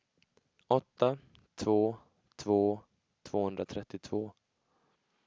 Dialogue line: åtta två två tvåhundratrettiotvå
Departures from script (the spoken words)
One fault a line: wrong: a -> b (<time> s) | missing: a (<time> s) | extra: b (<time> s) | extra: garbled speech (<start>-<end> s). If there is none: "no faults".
no faults